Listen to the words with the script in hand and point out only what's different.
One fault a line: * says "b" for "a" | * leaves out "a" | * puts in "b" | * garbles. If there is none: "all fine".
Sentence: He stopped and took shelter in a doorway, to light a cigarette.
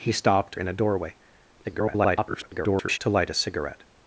* leaves out "and took shelter"
* garbles